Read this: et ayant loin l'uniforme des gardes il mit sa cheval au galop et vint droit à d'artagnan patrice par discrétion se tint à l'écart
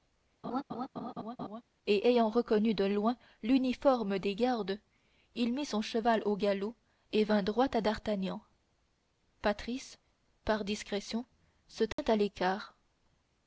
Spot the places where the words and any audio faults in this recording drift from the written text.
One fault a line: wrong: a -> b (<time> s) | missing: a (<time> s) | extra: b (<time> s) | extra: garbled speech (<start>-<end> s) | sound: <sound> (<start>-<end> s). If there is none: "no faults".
sound: laugh (0.4-1.6 s)
extra: reconnu de (2.3 s)
wrong: sa -> son (5.6 s)
sound: dropout (11.9-12.0 s)